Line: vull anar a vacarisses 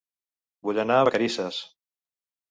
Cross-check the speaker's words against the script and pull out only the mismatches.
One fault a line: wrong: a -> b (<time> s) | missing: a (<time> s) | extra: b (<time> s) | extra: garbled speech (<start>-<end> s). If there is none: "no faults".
no faults